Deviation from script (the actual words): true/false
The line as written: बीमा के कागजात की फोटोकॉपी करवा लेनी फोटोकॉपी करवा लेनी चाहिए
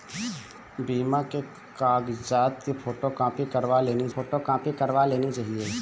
false